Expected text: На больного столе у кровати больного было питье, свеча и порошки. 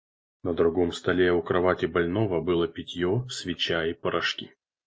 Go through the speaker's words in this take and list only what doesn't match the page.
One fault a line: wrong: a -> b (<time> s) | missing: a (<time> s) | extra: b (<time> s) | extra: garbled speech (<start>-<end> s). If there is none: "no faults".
wrong: больного -> другом (0.5 s)